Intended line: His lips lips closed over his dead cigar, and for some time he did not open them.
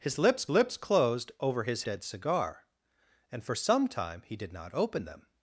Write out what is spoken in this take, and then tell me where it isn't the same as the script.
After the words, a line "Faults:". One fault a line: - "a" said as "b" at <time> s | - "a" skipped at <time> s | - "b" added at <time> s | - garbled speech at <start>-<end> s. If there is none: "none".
His lips lips closed over his dead cigar, and for some time he did not open them.
Faults:
none